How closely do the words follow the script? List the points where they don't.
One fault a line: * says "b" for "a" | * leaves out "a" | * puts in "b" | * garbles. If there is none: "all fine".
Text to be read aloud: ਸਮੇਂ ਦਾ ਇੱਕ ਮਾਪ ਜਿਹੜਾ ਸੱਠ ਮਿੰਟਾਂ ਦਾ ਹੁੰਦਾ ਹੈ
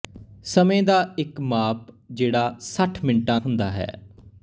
* leaves out "ਦਾ"